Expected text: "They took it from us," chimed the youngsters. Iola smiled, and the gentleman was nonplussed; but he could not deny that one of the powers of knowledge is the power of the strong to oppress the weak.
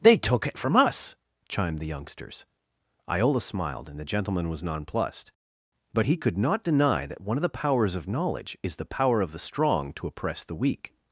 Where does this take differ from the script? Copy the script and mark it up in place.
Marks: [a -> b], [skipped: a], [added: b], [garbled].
"They took it from us," chimed the youngsters. Iola smiled, and the gentleman was nonplussed; but he could not deny that one of the powers of knowledge is the power of the strong to oppress the weak.